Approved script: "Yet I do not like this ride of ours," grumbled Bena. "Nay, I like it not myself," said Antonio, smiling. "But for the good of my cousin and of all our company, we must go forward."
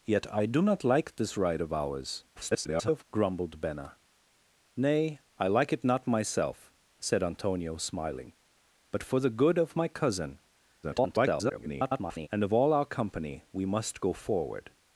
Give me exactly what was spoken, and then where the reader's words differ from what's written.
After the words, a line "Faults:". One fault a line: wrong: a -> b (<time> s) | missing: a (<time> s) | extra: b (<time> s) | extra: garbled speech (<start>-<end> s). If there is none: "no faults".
"Yet I do not like this ride of ours," [garbled] grumbled Bena. "Nay, I like it not myself," said Antonio, smiling. "But for the good of my cousin [garbled] and of all our company, we must go forward."
Faults:
extra: garbled speech (2.3-3.0 s)
extra: garbled speech (10.8-12.3 s)